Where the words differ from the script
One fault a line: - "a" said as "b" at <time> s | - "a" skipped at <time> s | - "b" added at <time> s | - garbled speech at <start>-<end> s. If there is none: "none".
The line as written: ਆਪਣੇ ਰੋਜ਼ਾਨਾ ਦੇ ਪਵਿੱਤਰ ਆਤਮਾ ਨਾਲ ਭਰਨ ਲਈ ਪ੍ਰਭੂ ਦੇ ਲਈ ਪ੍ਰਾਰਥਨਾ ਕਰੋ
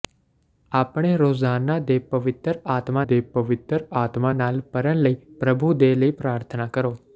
- "ਦੇ ਪਵਿੱਤਰ ਆਤਮਾ" added at 3.0 s